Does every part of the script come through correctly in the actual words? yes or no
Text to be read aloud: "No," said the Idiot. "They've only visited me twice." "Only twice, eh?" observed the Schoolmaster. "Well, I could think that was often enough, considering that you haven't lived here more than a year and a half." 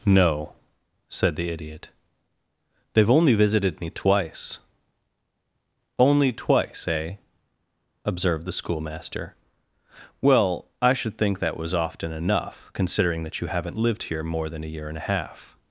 no